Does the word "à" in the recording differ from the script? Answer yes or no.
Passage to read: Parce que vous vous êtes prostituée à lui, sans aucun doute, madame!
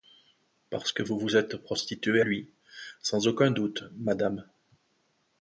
yes